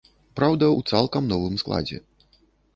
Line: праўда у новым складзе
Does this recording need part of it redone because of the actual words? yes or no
yes